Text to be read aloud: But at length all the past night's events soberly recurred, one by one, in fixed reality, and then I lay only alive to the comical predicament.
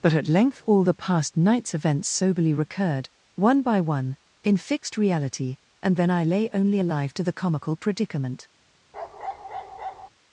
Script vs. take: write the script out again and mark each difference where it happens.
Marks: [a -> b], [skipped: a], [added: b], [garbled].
But at length all the past night's events soberly recurred, one by one, in fixed reality, and then I lay only alive to the comical predicament.